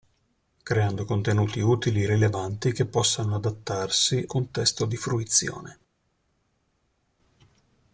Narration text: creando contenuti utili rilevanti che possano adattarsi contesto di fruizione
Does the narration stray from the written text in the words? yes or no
no